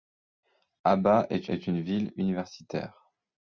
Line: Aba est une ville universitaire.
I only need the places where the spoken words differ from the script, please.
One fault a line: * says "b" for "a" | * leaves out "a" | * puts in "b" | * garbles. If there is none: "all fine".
* puts in "est"